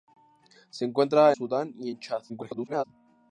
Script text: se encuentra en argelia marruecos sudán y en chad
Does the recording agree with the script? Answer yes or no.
no